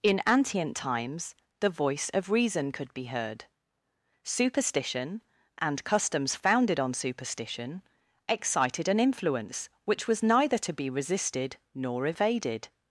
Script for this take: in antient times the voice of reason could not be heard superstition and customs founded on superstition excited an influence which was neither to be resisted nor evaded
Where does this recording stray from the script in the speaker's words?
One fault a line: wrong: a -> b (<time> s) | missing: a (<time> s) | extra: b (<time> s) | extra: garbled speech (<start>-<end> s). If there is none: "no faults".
missing: not (2.9 s)